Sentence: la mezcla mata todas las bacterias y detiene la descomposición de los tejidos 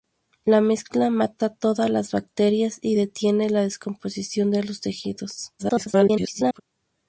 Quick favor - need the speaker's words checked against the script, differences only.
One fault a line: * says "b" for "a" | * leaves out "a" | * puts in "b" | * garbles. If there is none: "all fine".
* garbles